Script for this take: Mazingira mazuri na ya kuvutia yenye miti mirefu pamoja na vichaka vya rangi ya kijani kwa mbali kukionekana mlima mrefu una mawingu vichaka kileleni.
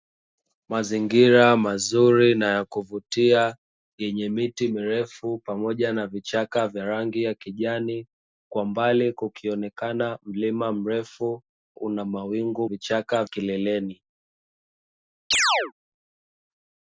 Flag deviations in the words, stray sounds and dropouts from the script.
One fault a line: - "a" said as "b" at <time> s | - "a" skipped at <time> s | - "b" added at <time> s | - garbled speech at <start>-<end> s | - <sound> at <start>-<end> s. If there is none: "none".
- chirp at 15.3-15.7 s